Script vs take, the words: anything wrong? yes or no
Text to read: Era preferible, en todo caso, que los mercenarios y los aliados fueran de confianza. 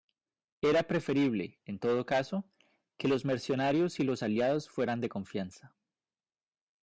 no